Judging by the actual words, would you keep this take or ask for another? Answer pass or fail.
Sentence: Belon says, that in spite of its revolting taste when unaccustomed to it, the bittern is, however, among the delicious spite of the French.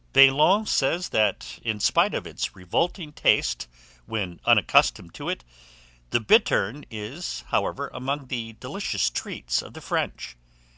fail